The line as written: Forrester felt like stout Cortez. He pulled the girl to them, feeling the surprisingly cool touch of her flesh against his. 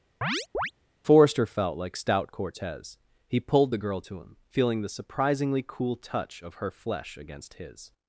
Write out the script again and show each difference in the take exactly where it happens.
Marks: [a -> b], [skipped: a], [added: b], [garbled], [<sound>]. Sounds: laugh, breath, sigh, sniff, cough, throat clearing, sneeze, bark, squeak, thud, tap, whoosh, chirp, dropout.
[chirp] Forrester felt like stout Cortez. He pulled the girl to [them, -> him] feeling the surprisingly cool touch of her flesh against his.